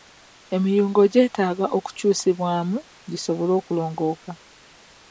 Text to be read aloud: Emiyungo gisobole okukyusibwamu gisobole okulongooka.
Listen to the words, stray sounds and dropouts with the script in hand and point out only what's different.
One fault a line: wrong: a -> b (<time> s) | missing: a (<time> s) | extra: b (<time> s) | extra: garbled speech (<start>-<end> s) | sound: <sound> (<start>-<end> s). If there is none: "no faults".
wrong: gisobole -> gyetaaga (1.1 s)